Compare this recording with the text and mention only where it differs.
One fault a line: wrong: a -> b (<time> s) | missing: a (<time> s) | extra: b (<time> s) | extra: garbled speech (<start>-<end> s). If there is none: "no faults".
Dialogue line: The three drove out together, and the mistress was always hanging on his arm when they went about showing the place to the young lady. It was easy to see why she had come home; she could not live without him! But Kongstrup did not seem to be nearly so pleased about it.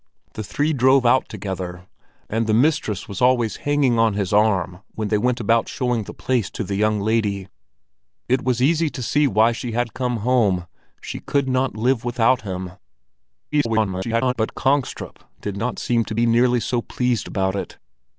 extra: garbled speech (13.5-14.3 s)